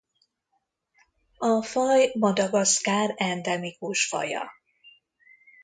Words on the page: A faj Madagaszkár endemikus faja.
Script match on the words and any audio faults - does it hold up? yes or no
yes